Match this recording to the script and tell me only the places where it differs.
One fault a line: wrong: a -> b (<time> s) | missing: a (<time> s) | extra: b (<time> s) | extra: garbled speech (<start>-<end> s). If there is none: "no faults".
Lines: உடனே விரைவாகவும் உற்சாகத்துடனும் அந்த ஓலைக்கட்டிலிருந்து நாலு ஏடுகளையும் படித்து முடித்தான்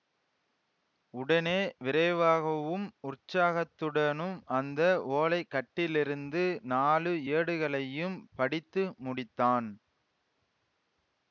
no faults